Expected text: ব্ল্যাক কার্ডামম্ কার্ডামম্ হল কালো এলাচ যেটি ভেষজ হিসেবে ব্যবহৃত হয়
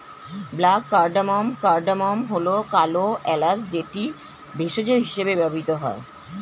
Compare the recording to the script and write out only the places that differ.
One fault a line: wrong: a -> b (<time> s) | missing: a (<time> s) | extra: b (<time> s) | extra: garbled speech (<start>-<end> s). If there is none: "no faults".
no faults